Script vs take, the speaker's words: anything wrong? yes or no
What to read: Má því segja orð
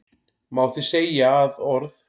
yes